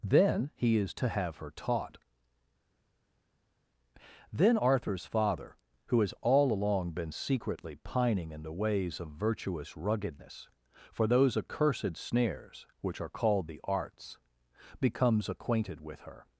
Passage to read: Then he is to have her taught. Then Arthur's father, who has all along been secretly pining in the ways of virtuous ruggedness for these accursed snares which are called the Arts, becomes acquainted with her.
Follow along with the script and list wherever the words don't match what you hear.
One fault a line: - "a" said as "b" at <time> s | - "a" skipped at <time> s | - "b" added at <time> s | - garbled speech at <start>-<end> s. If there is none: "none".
- "these" said as "those" at 11.1 s